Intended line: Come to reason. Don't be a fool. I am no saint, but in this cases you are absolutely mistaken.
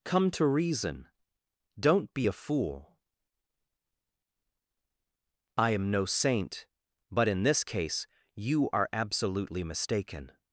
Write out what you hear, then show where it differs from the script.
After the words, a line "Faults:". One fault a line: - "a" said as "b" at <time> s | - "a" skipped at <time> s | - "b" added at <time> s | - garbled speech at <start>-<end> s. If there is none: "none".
Come to reason. Don't be a fool. I am no saint, but in this case you are absolutely mistaken.
Faults:
- "cases" said as "case" at 7.6 s